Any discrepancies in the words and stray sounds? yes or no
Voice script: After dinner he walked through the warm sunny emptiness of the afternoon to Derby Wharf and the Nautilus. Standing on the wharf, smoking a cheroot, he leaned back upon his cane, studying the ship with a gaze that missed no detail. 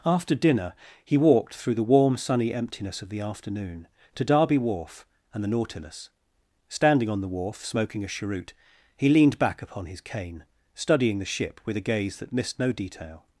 no